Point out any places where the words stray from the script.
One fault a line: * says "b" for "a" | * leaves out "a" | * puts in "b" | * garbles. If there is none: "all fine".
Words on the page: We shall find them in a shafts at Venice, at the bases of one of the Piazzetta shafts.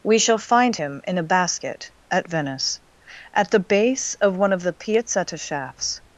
* says "him" for "them"
* says "basket" for "shafts"
* says "base" for "bases"